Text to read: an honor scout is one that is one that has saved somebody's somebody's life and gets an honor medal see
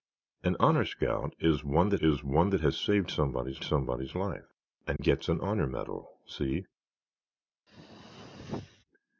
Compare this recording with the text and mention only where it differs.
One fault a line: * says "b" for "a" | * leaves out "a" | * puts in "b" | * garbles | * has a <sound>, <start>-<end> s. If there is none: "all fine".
* has a dropout, 5.0-5.0 s
* has a throat clearing, 7.7-8.8 s